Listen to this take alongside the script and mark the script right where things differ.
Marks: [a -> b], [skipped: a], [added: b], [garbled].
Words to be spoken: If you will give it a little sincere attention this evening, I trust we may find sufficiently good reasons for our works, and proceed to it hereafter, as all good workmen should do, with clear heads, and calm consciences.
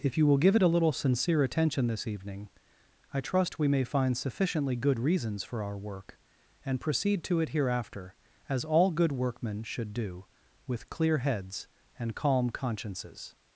If you will give it a little sincere attention this evening, I trust we may find sufficiently good reasons for our [works, -> work] and proceed to it hereafter, as all good workmen should do, with clear heads, and calm consciences.